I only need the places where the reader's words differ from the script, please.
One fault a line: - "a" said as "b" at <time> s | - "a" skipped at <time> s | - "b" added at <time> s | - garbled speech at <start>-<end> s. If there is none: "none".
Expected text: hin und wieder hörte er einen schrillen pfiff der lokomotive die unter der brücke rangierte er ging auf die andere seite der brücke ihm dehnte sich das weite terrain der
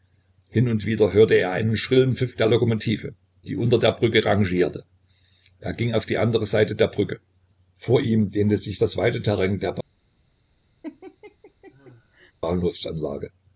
- "vor" added at 7.8 s